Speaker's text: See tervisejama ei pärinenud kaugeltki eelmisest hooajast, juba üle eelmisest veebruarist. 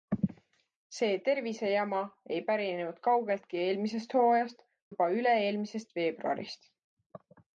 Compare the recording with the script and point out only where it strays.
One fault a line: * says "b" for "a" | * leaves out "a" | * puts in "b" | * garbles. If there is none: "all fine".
all fine